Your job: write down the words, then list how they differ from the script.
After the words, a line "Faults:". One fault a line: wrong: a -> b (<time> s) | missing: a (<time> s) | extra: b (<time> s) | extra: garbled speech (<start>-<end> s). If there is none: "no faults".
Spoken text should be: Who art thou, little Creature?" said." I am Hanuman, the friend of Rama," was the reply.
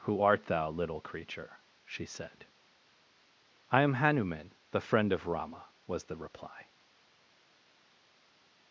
Who art thou, little Creature?" she said." I am Hanuman, the friend of Rama," was the reply.
Faults:
extra: she (1.8 s)